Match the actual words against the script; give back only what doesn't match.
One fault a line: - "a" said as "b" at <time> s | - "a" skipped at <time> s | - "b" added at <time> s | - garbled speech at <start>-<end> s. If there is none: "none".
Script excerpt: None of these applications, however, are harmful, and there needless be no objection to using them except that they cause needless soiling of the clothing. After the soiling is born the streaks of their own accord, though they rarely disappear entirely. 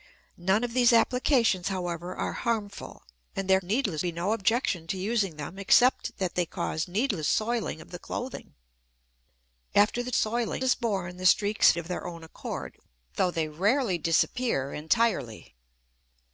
none